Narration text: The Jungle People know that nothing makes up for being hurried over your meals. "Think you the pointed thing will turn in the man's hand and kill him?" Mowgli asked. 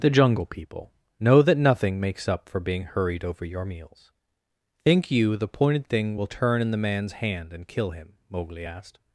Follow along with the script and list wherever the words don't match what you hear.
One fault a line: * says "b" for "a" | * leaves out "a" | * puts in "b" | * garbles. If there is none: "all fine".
all fine